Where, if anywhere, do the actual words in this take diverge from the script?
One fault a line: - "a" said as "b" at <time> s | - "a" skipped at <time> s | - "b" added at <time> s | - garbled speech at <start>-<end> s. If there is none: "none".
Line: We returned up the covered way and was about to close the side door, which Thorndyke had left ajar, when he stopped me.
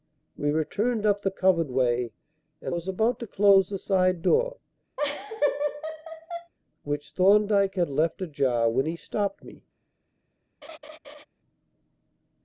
none